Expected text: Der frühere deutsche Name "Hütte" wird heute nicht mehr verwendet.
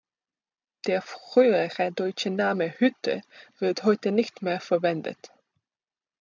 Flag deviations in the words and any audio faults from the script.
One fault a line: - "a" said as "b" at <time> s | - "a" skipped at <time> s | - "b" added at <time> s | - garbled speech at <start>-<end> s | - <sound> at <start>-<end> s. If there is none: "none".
none